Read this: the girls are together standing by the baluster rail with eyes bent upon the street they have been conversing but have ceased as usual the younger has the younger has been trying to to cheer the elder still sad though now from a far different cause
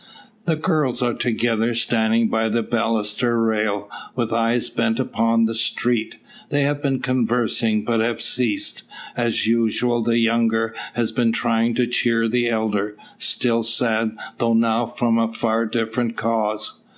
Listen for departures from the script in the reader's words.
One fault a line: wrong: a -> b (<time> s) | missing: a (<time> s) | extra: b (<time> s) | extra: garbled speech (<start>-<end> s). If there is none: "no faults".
missing: the younger has (11.1 s)
missing: to (11.9 s)